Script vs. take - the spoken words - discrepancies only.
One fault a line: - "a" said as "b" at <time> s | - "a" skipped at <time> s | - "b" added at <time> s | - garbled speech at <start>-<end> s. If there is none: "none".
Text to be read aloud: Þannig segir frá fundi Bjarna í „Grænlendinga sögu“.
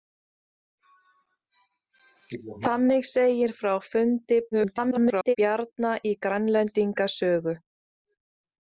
- garbled speech at 4.5-5.4 s